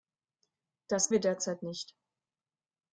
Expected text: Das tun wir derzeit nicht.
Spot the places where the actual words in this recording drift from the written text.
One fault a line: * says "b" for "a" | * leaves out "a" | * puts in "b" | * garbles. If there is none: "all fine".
* leaves out "tun"